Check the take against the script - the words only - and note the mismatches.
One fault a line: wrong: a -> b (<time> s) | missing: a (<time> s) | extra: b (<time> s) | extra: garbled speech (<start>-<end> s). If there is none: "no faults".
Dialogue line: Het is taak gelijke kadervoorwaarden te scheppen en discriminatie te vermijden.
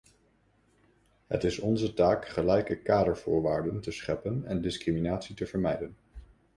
extra: onze (1.6 s)